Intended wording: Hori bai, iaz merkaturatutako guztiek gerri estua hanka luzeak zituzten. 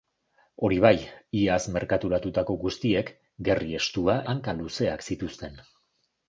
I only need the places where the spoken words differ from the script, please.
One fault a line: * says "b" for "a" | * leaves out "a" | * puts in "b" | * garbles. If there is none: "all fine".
all fine